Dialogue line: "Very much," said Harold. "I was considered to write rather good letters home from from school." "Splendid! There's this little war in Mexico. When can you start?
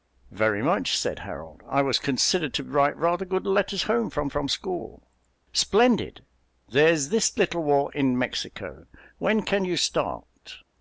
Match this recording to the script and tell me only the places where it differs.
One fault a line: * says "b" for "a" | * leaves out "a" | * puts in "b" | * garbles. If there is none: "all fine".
all fine